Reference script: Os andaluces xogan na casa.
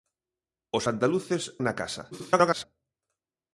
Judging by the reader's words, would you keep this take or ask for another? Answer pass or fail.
fail